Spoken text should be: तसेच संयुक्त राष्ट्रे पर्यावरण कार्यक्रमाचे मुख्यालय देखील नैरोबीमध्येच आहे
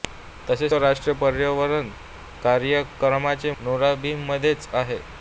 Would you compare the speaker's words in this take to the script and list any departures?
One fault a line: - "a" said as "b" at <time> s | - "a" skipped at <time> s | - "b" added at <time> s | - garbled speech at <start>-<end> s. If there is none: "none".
- "संयुक्त" skipped at 0.7 s
- "मुख्यालय देखील" skipped at 3.5 s